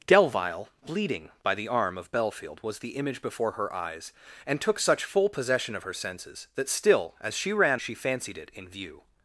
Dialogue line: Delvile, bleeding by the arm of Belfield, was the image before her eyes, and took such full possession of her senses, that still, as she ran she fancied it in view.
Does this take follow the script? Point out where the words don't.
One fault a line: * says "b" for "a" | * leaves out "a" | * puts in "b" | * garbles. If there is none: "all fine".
all fine